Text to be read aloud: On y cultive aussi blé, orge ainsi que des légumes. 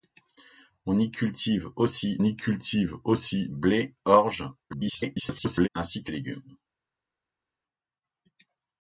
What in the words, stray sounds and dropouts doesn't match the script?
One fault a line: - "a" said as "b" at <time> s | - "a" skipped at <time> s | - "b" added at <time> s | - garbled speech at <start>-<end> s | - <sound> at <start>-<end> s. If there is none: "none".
- "y cultive aussi" added at 2.2 s
- garbled speech at 4.7-5.7 s
- "des" skipped at 6.1 s